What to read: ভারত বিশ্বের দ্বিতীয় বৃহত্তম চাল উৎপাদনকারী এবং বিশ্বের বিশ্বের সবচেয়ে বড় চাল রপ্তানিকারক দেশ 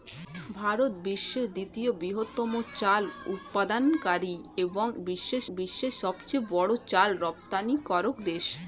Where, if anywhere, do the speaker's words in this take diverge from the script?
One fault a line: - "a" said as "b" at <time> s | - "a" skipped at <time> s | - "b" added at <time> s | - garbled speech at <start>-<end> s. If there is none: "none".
none